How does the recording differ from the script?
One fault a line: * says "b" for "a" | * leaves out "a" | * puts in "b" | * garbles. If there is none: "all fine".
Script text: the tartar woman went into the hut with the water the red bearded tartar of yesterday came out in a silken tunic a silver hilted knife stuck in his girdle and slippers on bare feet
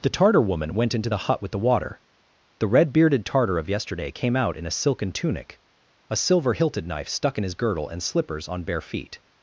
all fine